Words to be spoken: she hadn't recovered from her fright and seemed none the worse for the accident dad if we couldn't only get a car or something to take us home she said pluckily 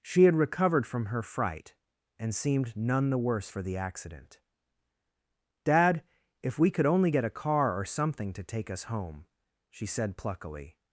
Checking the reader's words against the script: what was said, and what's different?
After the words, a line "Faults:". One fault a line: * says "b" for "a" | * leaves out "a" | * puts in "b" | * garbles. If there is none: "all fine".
she had recovered from her fright and seemed none the worse for the accident dad if we could only get a car or something to take us home she said pluckily
Faults:
* says "had" for "hadn't"
* says "could" for "couldn't"